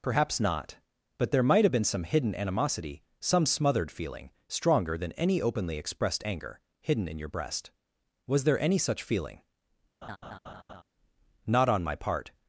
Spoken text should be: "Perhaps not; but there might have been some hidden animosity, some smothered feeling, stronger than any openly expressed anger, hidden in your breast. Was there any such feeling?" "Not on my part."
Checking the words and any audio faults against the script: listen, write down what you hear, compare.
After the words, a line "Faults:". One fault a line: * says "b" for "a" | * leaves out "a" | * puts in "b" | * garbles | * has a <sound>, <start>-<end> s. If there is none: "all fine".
"Perhaps not; but there might have been some hidden animosity, some smothered feeling, stronger than any openly expressed anger, hidden in your breast. Was there any such feeling?" "Not on my part."
Faults:
* has a laugh, 10.0-10.8 s